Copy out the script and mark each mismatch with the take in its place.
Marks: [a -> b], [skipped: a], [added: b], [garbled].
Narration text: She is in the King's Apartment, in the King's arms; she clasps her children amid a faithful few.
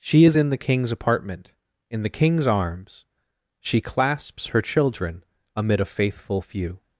She is in the King's Apartment, in the King's arms; she clasps her children amid a faithful few.